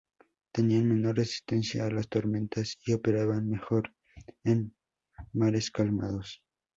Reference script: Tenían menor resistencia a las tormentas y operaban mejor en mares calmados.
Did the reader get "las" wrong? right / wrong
right